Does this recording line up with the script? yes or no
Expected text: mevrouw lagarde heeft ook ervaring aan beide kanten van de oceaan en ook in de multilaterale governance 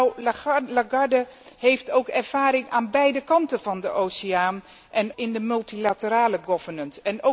no